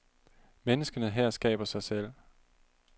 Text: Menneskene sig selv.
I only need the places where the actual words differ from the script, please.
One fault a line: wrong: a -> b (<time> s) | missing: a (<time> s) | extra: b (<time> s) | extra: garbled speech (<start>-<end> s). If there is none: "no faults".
extra: her skaber (1.1 s)